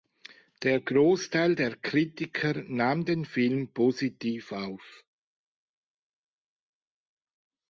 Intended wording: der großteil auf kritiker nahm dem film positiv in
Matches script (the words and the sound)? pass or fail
fail